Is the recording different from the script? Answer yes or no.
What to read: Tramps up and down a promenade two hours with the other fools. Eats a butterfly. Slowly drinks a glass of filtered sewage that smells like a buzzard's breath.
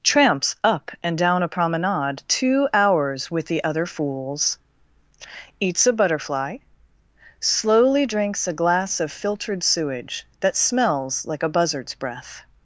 no